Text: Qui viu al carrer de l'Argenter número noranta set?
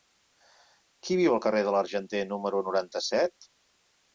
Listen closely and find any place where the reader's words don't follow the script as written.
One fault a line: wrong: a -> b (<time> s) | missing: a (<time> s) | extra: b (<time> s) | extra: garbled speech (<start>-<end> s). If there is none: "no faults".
no faults